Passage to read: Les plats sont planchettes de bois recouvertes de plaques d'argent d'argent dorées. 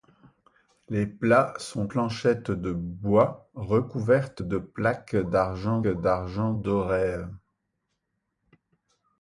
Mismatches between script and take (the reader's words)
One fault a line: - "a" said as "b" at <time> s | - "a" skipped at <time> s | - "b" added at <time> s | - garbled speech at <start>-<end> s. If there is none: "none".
none